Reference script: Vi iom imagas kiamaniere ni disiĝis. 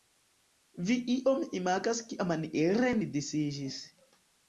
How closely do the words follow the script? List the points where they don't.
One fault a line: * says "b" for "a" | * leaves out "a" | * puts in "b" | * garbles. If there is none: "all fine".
all fine